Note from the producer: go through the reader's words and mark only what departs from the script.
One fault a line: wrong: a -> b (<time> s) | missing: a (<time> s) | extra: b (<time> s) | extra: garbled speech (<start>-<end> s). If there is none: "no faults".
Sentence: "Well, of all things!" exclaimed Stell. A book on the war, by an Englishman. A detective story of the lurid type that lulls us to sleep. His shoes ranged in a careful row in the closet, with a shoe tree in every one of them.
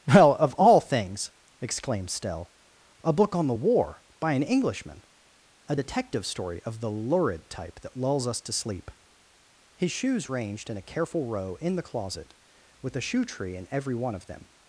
no faults